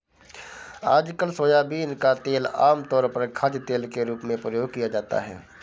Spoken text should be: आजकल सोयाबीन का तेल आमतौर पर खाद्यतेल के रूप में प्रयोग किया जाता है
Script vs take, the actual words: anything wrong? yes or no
no